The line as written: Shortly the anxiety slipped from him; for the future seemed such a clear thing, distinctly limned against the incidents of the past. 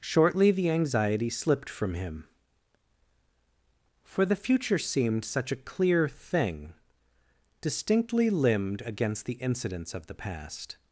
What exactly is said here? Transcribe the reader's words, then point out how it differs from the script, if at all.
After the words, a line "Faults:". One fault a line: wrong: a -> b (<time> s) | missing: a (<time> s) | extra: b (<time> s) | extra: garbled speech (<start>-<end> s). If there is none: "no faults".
Shortly the anxiety slipped from him; for the future seemed such a clear thing, distinctly limned against the incidents of the past.
Faults:
no faults